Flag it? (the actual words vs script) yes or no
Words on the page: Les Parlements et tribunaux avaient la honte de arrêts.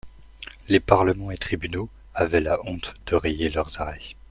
yes